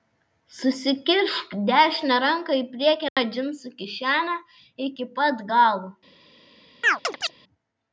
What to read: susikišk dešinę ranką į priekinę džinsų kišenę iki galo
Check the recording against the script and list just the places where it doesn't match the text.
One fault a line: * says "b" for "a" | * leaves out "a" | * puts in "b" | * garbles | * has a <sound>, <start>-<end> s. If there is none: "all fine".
* has a dropout, 3.1-3.2 s
* puts in "pat"
* has a chirp, 6.8-7.3 s